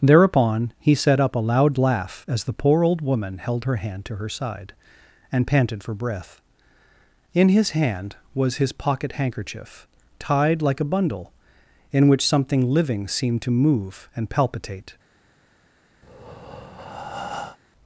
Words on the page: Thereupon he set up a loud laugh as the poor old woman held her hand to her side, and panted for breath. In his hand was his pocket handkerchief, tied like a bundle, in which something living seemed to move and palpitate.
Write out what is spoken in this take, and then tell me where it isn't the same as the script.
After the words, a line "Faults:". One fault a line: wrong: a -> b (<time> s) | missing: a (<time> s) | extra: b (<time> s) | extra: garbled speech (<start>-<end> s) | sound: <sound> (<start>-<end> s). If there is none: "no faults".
Thereupon he set up a loud laugh as the poor old woman held her hand to her side, and panted for breath. In his hand was his pocket handkerchief, tied like a bundle, in which something living seemed to move and palpitate.
Faults:
sound: breath (16.0-17.6 s)